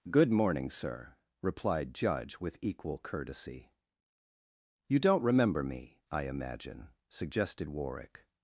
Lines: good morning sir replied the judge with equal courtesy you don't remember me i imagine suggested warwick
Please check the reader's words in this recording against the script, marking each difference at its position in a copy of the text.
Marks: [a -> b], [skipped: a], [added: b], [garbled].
good morning sir replied [skipped: the] judge with equal courtesy you don't remember me i imagine suggested warwick